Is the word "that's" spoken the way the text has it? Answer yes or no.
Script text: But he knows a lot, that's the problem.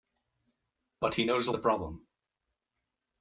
no